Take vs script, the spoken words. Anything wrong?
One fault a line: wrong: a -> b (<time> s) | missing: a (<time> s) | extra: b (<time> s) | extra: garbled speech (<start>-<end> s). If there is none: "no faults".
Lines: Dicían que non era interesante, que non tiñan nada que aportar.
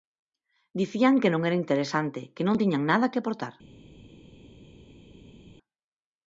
no faults